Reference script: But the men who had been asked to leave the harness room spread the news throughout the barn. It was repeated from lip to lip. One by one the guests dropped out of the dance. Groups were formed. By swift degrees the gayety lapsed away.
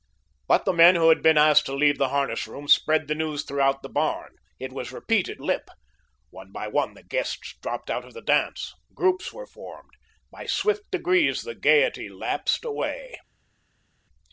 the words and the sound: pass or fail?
fail